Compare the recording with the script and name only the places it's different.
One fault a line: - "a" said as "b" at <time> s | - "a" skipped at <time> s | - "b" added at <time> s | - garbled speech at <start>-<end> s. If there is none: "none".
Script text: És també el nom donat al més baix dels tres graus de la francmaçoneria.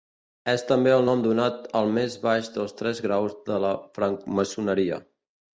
none